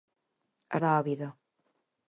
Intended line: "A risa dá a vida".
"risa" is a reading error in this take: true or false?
true